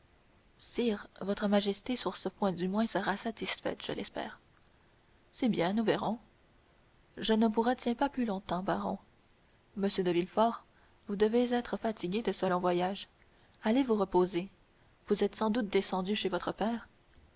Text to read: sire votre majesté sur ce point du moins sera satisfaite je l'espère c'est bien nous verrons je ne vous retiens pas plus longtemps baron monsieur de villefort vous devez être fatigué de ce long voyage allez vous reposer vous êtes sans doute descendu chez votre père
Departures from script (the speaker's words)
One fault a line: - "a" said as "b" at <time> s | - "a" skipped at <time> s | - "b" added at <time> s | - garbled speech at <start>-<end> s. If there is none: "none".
none